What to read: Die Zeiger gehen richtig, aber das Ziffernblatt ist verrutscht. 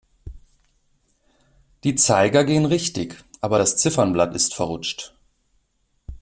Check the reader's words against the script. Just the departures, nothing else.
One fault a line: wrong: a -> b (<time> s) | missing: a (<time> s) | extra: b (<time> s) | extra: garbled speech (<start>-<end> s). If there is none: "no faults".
no faults